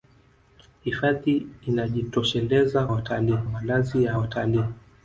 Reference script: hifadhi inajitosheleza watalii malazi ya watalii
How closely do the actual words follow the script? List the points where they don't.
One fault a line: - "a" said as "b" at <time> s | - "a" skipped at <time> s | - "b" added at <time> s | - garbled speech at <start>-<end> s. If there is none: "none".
none